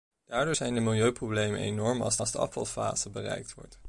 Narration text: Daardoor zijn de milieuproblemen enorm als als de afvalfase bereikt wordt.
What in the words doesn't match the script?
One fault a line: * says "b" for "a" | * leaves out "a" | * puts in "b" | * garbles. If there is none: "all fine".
all fine